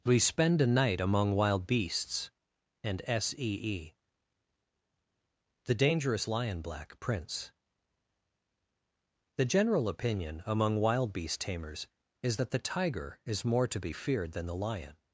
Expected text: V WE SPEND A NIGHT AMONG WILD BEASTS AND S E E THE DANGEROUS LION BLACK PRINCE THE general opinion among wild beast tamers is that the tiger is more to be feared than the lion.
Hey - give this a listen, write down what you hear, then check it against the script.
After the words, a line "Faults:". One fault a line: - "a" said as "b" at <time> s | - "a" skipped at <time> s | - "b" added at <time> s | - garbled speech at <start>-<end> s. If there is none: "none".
WE SPEND A NIGHT AMONG WILD BEASTS AND S E E THE DANGEROUS LION BLACK PRINCE THE general opinion among wild beast tamers is that the tiger is more to be feared than the lion.
Faults:
- "V" skipped at 0.0 s